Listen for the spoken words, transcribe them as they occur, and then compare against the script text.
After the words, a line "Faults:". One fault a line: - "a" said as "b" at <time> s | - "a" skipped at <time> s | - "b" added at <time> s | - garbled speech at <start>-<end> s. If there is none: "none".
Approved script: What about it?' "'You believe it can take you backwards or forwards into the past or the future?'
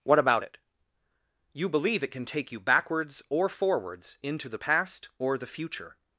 What about it?' "'You believe it can take you backwards or forwards into the past or the future?'
Faults:
none